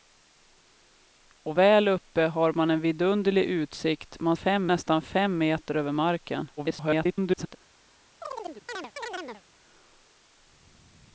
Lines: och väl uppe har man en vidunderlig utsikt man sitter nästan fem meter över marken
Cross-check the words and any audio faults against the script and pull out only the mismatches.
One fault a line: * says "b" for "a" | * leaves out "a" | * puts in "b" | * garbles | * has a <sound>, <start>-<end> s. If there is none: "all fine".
* says "fem" for "sitter"
* garbles
* has a chirp, 8.2-9.4 s